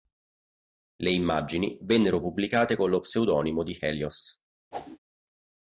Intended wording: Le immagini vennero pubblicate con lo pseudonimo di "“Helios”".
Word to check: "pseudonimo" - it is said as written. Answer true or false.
true